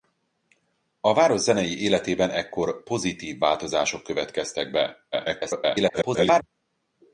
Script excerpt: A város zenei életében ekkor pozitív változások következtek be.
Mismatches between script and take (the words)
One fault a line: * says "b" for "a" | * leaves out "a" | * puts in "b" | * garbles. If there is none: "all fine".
* garbles